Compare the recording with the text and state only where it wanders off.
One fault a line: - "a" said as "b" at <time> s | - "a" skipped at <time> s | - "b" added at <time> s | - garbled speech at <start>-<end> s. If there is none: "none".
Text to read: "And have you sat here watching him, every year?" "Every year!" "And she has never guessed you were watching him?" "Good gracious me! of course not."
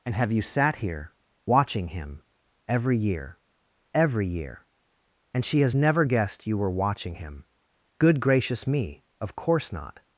none